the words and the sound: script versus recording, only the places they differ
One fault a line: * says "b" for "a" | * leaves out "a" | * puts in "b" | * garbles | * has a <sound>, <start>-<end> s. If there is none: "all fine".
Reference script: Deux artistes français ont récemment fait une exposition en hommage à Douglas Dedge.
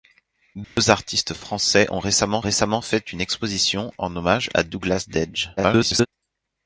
* has a dropout, 0.6-0.8 s
* puts in "récemment"
* garbles